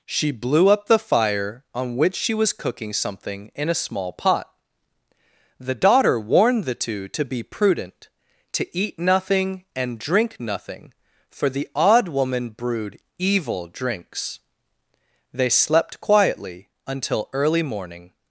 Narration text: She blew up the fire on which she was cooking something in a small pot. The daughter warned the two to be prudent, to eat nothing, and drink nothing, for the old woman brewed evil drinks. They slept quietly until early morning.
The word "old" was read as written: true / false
false